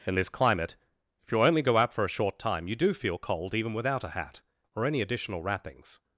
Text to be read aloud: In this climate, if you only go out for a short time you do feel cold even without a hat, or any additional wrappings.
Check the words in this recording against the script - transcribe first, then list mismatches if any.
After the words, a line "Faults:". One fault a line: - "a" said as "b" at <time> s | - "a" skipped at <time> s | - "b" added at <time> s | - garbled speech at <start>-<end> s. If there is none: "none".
In this climate, if you only go out for a short time you do feel cold even without a hat, or any additional wrappings.
Faults:
none